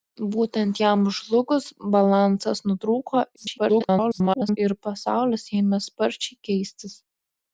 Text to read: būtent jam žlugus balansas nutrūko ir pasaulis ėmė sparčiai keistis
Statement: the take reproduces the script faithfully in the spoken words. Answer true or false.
false